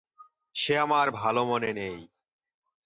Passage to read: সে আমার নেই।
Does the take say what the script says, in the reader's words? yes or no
no